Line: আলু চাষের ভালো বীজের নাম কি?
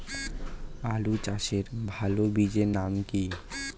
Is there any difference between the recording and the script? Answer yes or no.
no